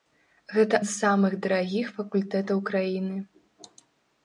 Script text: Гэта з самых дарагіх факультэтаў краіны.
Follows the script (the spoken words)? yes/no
yes